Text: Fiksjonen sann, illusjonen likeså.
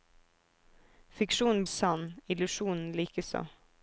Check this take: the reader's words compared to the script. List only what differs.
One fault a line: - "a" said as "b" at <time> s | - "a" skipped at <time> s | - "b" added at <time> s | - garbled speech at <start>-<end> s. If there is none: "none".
none